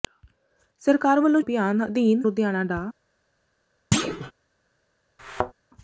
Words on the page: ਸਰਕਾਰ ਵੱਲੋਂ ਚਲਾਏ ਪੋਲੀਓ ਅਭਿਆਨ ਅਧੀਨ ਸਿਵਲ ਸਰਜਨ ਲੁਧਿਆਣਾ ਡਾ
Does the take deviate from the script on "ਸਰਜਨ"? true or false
true